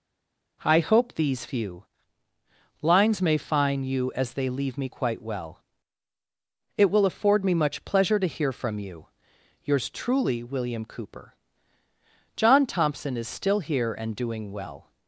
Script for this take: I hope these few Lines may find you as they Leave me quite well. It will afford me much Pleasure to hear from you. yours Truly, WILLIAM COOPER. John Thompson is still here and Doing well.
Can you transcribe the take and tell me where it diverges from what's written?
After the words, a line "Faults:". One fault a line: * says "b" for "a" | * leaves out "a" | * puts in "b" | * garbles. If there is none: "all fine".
I hope these few Lines may find you as they Leave me quite well. It will afford me much Pleasure to hear from you. yours Truly, WILLIAM COOPER. John Thompson is still here and Doing well.
Faults:
all fine